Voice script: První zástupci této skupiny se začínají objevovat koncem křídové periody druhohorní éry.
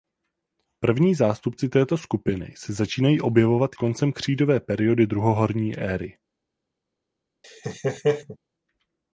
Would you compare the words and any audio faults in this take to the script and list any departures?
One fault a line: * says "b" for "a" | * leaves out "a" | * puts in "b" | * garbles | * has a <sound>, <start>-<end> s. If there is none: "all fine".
* has a laugh, 7.4-8.4 s